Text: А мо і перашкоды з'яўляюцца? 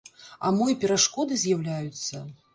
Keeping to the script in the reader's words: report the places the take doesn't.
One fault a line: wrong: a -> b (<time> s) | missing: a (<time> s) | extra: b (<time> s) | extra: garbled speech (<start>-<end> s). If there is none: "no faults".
no faults